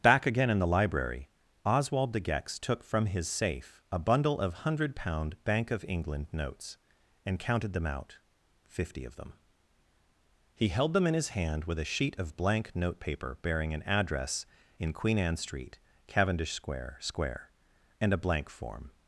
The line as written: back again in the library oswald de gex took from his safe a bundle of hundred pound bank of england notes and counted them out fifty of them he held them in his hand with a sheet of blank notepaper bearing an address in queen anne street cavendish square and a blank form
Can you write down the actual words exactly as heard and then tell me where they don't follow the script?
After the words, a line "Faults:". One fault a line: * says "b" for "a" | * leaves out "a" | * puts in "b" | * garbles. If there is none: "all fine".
back again in the library oswald de gex took from his safe a bundle of hundred pound bank of england notes and counted them out fifty of them he held them in his hand with a sheet of blank notepaper bearing an address in queen anne street cavendish square square and a blank form
Faults:
* puts in "square"